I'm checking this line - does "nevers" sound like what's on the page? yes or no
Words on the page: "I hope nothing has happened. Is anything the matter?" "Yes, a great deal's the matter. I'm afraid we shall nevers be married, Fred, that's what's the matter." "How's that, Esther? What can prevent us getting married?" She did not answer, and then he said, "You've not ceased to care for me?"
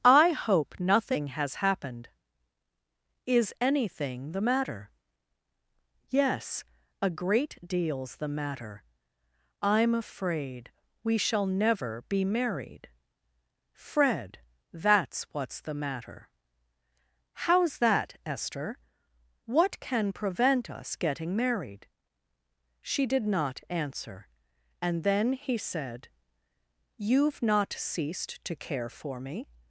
no